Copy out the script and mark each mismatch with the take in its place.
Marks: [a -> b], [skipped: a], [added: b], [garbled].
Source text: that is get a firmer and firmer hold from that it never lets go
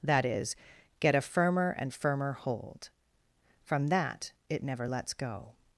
that is get a firmer and firmer hold from that it never lets go